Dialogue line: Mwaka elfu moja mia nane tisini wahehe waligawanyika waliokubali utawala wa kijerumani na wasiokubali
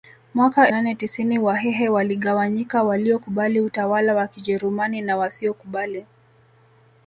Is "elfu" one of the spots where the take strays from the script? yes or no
yes